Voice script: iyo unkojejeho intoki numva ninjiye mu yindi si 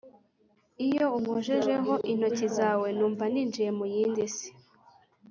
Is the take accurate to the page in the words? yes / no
no